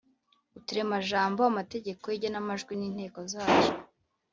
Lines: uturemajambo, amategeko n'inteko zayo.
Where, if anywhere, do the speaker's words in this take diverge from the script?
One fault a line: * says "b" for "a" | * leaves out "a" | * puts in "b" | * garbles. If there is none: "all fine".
* puts in "y'igenamajwi"